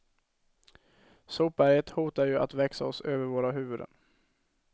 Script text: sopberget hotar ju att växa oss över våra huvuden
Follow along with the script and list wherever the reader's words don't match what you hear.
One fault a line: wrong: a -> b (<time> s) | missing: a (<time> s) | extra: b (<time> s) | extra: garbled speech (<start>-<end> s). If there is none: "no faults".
no faults